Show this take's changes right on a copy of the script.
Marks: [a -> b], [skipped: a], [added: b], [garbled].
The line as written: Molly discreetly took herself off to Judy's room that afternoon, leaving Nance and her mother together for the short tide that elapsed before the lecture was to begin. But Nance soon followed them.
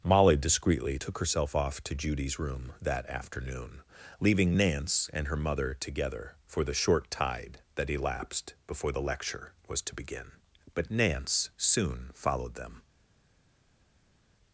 Molly discreetly took herself off to Judy's room that afternoon, leaving Nance and her mother together for the short tide that elapsed before the lecture was to begin. But Nance soon followed them.